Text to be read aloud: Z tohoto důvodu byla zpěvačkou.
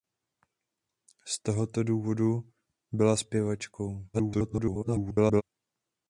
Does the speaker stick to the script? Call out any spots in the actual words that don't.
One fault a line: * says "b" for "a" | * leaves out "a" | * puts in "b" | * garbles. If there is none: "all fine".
* garbles